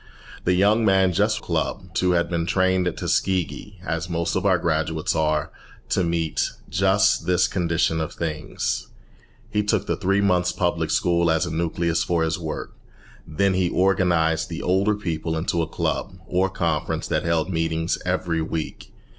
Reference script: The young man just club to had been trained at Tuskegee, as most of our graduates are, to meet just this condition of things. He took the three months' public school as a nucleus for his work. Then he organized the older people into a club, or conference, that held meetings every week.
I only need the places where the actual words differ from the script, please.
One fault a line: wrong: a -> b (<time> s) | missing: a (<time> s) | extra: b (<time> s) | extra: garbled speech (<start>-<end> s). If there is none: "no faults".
no faults